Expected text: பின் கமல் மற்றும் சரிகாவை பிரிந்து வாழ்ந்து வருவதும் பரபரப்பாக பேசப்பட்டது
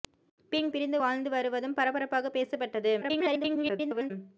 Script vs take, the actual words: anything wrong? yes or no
yes